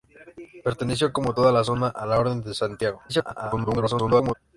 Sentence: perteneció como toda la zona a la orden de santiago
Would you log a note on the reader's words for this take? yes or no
yes